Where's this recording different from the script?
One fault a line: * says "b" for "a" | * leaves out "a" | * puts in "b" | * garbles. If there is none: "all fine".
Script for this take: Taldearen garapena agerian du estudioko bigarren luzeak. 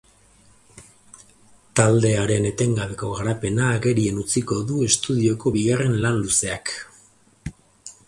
* puts in "etengabeko"
* puts in "utziko"
* puts in "lan"